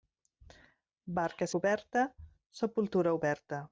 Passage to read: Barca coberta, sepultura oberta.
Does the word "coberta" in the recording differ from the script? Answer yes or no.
no